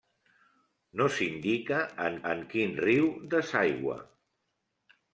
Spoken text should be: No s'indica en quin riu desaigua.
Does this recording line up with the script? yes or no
no